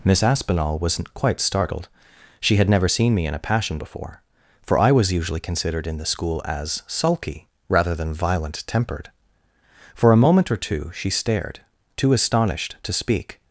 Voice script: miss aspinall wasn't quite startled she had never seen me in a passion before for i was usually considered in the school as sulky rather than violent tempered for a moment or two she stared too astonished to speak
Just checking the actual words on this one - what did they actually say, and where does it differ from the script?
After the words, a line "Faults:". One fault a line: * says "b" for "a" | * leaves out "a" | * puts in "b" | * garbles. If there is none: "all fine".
miss aspinall wasn't quite startled she had never seen me in a passion before for i was usually considered in the school as sulky rather than violent tempered for a moment or two she stared too astonished to speak
Faults:
all fine